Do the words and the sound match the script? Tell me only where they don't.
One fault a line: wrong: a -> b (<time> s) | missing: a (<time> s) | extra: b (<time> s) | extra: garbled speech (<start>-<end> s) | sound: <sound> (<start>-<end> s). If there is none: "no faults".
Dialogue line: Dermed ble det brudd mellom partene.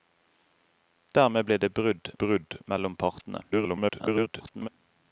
extra: brudd (2.2 s)
extra: garbled speech (3.5-4.7 s)